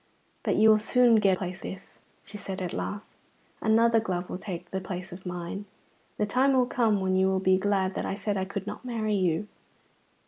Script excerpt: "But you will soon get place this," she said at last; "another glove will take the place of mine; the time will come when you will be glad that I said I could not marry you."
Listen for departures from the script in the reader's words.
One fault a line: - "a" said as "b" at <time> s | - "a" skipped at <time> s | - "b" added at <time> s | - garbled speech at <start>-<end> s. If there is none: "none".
none